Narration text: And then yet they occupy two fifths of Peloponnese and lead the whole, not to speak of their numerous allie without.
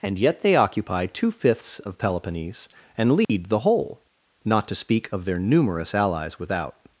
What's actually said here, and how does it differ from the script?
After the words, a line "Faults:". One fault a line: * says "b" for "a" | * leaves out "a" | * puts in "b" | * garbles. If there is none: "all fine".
And yet they occupy two fifths of Peloponnese and lead the whole, not to speak of their numerous allies without.
Faults:
* leaves out "then"
* says "allies" for "allie"